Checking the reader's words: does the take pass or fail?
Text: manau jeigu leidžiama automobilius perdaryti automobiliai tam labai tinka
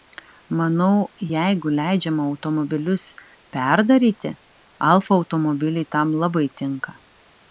fail